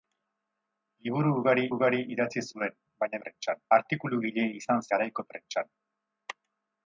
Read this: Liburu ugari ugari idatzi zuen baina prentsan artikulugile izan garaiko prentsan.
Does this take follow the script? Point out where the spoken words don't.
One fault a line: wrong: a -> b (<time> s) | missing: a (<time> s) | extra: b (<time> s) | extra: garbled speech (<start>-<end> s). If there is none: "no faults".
no faults